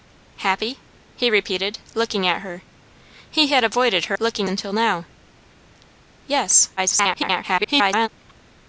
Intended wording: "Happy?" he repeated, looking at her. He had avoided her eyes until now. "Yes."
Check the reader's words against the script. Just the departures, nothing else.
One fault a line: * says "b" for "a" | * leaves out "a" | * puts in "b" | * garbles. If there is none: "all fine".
* says "looking" for "eyes"
* garbles